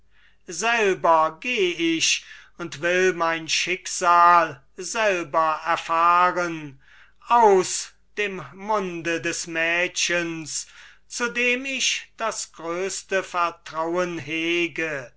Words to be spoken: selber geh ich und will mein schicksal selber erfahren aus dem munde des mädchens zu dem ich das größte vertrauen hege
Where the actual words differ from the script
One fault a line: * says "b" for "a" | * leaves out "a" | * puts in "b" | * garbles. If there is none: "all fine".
all fine